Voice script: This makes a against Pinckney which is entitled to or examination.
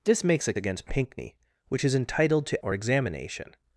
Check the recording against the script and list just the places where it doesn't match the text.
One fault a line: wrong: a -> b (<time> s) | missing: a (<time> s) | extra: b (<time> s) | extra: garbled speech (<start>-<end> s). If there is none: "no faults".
no faults